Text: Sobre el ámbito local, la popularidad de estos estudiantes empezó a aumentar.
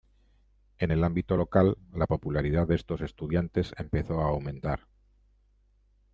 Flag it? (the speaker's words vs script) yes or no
yes